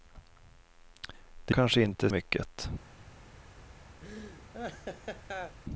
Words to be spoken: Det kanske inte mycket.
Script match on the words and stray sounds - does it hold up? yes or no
no